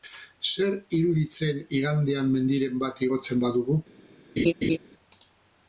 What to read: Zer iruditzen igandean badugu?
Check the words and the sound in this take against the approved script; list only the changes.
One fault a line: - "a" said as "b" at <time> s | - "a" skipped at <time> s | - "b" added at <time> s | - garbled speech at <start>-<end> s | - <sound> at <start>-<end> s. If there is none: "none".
- "mendiren bat igotzen" added at 2.4 s
- laugh at 4.4-4.8 s